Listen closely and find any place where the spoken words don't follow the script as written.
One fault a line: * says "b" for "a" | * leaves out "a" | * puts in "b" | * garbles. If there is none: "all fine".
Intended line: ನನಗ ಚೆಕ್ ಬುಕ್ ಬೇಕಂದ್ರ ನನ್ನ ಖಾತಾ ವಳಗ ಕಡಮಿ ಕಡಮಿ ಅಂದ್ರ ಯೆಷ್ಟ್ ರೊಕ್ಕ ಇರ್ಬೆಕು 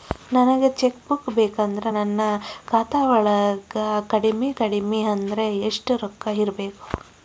all fine